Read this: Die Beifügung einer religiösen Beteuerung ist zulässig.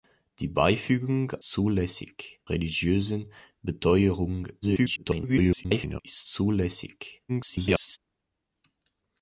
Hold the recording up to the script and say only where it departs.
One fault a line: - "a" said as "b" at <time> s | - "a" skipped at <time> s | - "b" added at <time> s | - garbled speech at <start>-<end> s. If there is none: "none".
- "einer" said as "zulässig" at 1.4 s
- garbled speech at 4.6-6.0 s
- garbled speech at 7.3-8.0 s